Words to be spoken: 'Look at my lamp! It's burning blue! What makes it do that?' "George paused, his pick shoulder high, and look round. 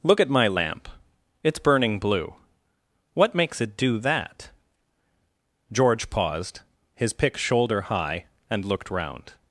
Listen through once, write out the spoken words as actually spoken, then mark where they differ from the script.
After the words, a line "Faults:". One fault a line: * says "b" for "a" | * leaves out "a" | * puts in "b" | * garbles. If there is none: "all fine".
'Look at my lamp! It's burning blue! What makes it do that?' "George paused, his pick shoulder high, and looked round.
Faults:
* says "looked" for "look"